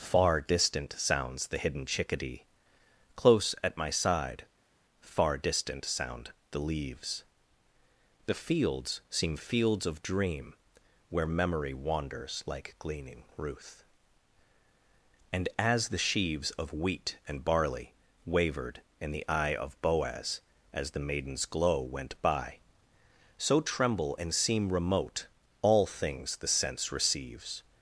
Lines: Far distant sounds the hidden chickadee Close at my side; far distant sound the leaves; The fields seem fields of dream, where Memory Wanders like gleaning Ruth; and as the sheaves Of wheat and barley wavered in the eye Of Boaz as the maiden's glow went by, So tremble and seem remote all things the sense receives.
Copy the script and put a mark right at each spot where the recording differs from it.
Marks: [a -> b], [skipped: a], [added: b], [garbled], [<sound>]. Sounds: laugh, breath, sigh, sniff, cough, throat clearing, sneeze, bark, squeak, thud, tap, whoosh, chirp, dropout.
Far distant sounds the hidden chickadee Close at my side; far distant sound the leaves; The fields seem fields of dream, where Memory Wanders like gleaning Ruth; and as the sheaves Of wheat and barley wavered in the eye Of Boaz as the maiden's glow went by, So tremble and seem remote all things the sense receives.